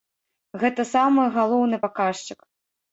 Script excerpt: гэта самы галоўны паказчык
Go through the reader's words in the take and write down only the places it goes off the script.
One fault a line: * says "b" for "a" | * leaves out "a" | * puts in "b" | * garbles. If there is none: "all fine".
all fine